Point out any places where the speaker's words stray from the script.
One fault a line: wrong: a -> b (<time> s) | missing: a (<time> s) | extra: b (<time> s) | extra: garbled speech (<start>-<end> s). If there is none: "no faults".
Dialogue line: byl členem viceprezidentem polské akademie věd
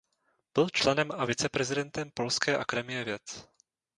extra: a (1.1 s)